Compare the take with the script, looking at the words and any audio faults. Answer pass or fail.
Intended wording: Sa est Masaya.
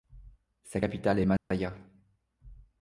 fail